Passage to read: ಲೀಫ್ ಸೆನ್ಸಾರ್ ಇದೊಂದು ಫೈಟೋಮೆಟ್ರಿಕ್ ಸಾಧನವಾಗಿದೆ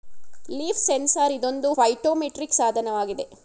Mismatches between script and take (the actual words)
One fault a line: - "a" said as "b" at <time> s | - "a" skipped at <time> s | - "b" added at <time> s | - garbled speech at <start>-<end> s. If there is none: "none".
none